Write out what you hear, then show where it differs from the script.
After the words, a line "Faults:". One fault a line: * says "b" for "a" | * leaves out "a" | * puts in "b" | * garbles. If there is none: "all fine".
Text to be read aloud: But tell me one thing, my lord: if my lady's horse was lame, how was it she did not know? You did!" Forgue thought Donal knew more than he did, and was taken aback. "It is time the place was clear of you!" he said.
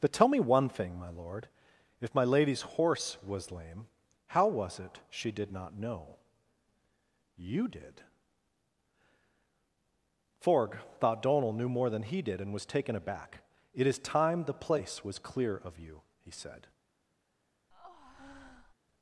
But tell me one thing, my lord: if my lady's horse was lame, how was it she did not know? You did!" Forgue thought Donal knew more than he did, and was taken aback. "It is time the place was clear of you!" he said.
Faults:
all fine